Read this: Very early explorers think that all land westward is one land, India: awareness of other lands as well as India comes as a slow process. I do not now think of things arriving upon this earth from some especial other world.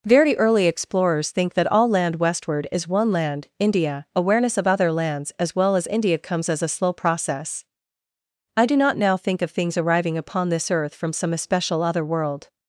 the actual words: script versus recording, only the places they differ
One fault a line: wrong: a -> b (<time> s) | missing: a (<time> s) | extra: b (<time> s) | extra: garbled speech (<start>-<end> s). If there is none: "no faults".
no faults